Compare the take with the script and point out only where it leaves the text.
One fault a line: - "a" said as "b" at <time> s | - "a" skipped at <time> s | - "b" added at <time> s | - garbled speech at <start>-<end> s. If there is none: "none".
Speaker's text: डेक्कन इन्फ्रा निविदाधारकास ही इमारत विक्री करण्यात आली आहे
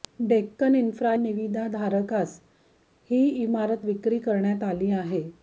none